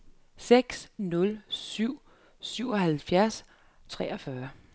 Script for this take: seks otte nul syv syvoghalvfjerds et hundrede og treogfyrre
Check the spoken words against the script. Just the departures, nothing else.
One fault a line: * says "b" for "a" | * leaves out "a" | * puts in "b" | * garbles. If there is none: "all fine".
* leaves out "otte"
* leaves out "et hundrede og"